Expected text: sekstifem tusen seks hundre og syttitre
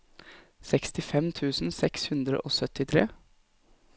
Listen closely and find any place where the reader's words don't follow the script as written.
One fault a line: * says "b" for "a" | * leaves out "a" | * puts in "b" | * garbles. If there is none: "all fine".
all fine